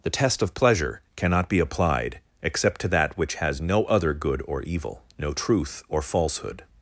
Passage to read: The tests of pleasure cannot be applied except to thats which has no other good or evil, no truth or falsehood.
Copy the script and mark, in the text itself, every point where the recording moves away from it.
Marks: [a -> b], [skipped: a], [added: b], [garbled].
The [tests -> test] of pleasure cannot be applied except to [thats -> that] which has no other good or evil, no truth or falsehood.